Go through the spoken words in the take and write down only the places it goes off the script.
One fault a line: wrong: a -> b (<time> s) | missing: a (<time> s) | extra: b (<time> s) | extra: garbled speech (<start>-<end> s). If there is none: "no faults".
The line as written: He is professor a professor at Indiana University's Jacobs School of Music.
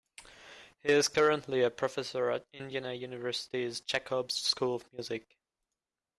wrong: professor -> currently (1.1 s)